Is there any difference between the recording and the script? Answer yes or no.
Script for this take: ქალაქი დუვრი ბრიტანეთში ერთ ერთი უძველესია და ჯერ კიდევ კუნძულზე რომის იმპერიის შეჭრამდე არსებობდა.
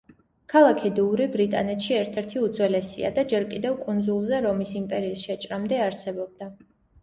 no